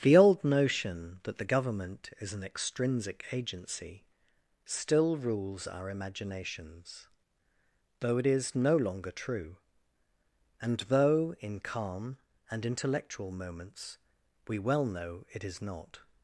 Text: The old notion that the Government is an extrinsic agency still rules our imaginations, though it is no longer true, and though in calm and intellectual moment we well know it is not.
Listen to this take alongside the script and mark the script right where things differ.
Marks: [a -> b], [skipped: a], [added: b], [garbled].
The old notion that the Government is an extrinsic agency still rules our imaginations, though it is no longer true, and though in calm and intellectual [moment -> moments] we well know it is not.